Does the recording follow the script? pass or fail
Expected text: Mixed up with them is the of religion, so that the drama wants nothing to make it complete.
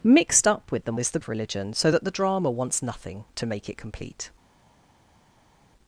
pass